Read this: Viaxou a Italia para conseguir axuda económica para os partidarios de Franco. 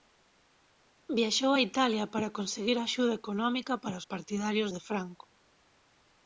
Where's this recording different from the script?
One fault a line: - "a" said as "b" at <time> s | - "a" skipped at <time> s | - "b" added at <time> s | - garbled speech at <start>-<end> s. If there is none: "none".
none